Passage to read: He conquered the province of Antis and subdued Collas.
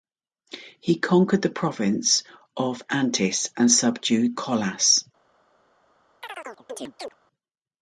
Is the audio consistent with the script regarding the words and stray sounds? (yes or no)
no